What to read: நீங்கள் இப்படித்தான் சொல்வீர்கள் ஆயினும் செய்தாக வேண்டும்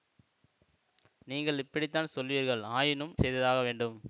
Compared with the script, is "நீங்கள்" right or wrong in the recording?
right